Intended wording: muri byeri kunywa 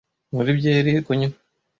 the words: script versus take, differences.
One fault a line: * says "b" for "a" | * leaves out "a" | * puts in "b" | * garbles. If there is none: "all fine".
all fine